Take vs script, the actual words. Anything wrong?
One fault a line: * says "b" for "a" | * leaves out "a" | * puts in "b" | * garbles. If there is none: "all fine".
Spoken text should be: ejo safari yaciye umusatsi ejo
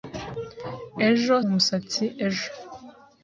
* leaves out "safari yaciye"